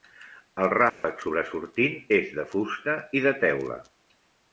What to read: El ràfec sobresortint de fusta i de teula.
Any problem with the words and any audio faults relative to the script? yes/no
yes